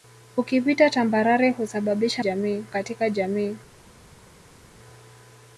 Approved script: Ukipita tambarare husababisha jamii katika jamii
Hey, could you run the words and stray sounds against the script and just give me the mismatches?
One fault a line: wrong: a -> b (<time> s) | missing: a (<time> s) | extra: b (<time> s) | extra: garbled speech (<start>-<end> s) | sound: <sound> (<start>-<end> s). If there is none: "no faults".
no faults